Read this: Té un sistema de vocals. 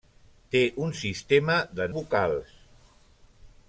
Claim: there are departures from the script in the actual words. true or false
false